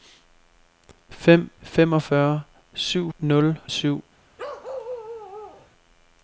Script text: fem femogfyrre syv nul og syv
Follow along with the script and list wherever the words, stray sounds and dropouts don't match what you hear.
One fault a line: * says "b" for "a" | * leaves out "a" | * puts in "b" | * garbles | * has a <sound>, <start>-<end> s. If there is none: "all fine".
* has a bark, 4.4-5.7 s